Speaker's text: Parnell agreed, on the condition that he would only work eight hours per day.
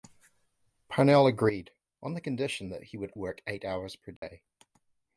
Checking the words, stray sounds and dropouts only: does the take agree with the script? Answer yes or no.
no